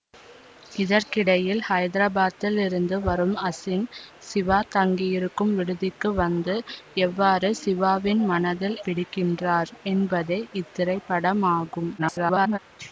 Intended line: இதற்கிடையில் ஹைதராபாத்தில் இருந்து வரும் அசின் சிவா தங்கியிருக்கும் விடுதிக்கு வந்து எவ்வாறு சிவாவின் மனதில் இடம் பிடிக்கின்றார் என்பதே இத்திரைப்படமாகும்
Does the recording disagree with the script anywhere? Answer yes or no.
yes